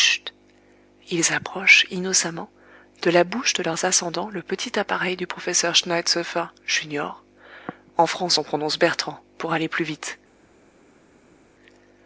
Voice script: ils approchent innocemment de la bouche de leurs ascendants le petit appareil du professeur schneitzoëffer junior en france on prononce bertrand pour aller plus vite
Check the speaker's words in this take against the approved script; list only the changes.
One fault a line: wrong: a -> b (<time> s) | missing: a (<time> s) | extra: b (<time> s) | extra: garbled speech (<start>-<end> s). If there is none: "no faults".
no faults